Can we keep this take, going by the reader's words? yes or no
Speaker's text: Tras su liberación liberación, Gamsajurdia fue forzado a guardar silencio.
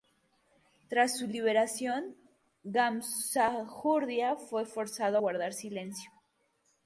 no